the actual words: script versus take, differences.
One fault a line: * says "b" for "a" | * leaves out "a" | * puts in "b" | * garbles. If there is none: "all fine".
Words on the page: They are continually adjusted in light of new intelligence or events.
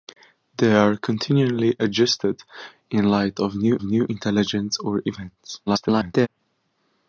* puts in "new"
* garbles